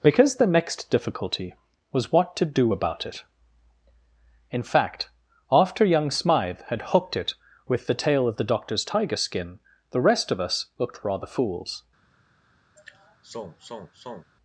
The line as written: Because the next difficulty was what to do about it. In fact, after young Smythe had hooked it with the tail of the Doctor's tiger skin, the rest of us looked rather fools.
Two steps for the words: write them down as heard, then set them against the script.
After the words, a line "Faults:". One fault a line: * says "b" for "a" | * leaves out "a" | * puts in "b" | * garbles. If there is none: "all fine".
Because the next difficulty was what to do about it. In fact, after young Smythe had hooked it with the tail of the Doctor's tiger skin, the rest of us looked rather fools.
Faults:
all fine